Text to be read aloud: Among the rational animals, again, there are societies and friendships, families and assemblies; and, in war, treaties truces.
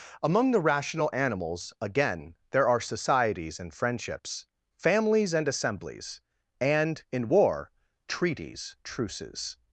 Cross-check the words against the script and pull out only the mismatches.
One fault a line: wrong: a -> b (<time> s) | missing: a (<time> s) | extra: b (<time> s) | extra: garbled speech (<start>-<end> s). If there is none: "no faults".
no faults